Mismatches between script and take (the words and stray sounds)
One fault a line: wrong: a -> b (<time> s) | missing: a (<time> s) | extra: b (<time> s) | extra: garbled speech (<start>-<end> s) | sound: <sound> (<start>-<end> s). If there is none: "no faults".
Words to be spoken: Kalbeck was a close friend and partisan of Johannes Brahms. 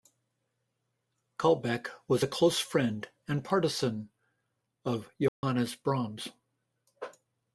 sound: dropout (5.3-5.4 s)